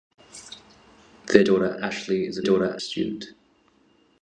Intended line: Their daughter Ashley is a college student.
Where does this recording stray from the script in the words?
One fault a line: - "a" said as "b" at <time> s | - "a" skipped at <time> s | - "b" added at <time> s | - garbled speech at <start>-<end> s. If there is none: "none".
- "college" said as "daughter" at 2.4 s